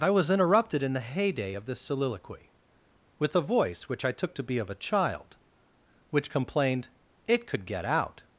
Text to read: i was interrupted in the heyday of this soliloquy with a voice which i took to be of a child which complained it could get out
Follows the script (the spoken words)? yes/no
yes